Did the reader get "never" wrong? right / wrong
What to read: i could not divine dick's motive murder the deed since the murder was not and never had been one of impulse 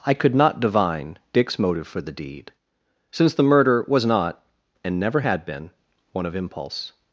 right